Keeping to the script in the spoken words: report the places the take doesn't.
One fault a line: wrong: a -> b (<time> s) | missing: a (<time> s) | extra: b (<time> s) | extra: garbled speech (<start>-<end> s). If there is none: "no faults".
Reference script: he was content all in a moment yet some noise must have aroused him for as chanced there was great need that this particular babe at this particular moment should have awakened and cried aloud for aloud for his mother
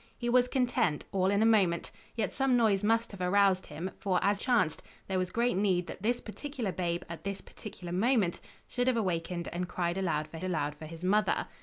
no faults